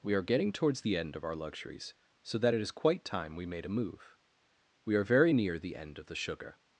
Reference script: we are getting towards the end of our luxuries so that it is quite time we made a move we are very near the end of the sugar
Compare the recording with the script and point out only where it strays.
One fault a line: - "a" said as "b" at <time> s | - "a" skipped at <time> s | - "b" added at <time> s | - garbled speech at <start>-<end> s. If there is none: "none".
none